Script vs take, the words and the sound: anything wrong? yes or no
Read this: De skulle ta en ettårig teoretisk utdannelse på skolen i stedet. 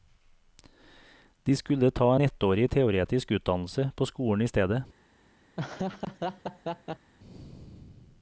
yes